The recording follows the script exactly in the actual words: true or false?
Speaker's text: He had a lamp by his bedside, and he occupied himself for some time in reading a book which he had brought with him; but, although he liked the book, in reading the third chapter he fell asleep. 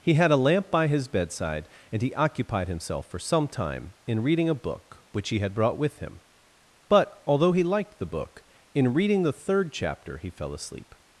true